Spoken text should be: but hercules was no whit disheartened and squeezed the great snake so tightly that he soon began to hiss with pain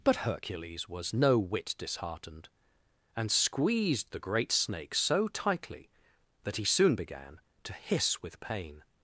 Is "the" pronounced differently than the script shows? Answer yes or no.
no